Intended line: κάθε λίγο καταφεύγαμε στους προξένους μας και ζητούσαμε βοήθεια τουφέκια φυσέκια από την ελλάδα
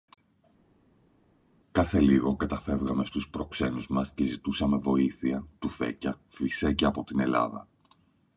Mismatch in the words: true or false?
false